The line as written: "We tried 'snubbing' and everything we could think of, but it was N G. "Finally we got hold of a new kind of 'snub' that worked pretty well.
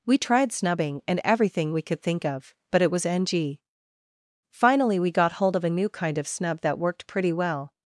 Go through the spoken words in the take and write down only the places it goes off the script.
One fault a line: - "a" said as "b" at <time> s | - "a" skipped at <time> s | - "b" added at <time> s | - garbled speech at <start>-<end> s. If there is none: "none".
none